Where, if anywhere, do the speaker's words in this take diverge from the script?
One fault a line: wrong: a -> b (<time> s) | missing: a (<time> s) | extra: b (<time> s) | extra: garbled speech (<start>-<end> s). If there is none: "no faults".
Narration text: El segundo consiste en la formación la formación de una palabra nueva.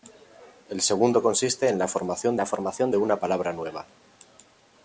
no faults